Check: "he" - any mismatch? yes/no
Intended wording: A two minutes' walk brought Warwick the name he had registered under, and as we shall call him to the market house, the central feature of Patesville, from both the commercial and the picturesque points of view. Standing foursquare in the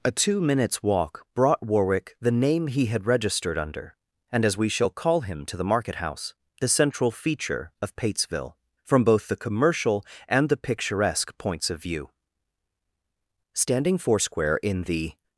no